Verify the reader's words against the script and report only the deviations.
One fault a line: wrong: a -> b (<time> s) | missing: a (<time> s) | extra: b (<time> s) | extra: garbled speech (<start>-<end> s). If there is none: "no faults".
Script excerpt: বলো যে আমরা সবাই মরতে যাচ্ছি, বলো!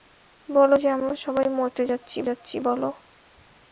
extra: যাচ্ছি (2.2 s)